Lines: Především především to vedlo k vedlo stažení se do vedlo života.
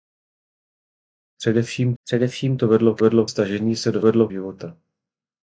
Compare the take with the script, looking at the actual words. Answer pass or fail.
pass